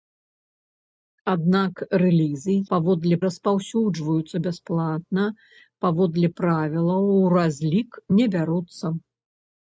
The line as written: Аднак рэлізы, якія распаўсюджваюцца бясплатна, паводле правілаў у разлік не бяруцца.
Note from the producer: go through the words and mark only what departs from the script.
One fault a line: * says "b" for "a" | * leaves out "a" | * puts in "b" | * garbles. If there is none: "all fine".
* says "паводле" for "якія"